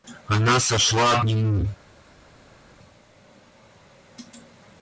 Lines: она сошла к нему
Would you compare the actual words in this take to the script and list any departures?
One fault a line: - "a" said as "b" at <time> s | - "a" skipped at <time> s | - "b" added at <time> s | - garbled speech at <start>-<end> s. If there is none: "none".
- "к" skipped at 1.2 s